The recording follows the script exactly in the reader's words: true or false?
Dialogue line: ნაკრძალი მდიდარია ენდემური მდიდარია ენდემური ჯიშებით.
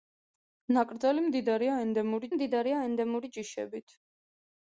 true